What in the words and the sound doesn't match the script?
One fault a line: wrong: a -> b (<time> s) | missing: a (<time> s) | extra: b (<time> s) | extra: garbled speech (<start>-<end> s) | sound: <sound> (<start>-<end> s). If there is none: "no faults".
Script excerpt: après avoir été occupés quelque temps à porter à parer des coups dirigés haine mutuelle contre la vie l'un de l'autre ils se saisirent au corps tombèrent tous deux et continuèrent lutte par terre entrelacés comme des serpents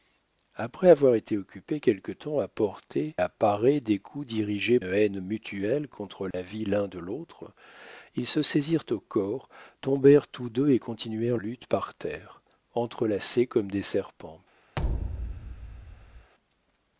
sound: dropout (6.3-6.3 s)
sound: thud (14.8-16.3 s)